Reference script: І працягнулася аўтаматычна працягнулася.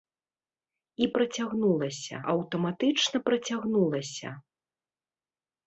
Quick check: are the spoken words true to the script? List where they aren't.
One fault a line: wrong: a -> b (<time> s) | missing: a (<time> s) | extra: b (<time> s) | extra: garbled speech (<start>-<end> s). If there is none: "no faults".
no faults